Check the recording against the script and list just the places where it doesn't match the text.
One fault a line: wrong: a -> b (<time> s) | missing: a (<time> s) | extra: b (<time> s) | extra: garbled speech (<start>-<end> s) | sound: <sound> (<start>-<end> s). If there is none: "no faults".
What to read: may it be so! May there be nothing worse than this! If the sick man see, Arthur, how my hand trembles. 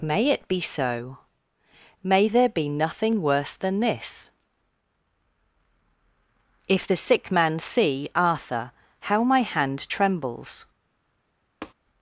sound: tap (11.6-11.7 s)